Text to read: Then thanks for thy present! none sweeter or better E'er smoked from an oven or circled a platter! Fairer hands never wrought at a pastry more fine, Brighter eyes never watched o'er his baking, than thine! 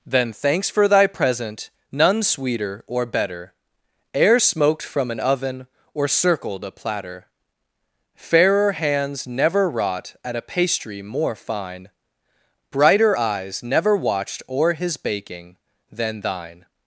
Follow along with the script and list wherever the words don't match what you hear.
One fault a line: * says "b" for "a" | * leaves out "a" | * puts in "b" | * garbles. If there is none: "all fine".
all fine